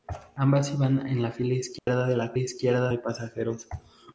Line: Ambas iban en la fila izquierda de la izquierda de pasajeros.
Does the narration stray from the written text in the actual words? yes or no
no